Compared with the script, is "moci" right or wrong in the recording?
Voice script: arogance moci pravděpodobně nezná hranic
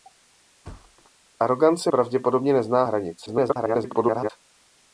wrong